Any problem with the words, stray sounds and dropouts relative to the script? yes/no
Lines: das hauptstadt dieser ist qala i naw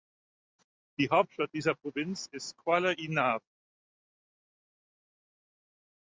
yes